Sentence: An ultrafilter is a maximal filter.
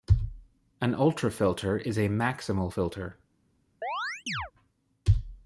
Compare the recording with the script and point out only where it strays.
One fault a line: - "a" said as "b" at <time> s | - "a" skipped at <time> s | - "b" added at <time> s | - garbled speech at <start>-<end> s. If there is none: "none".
none